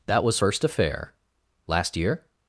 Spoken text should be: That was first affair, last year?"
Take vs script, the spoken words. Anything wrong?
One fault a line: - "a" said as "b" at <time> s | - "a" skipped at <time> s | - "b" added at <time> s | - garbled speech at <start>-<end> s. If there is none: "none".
none